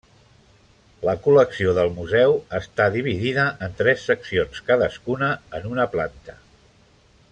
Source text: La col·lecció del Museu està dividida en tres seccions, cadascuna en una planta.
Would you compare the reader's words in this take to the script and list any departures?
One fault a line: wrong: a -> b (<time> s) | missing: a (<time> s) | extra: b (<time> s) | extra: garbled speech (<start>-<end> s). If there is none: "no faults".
no faults